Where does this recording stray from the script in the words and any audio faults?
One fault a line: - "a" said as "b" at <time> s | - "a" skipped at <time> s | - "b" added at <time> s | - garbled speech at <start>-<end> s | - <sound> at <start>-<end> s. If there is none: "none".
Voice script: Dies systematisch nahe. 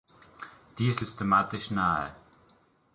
none